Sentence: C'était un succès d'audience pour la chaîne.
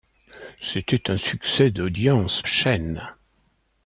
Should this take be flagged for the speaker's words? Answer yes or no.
yes